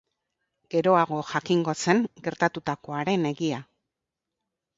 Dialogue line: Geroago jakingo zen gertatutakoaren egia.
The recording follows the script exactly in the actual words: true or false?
true